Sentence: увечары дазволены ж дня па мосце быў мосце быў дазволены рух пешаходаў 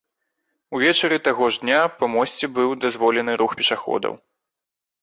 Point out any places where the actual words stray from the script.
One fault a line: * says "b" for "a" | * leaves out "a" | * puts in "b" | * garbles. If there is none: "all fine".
* says "таго" for "дазволены"
* leaves out "мосце быў"